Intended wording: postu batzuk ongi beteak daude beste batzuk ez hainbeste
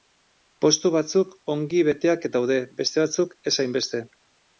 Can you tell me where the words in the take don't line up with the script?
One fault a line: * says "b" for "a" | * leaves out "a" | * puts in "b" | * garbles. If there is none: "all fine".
all fine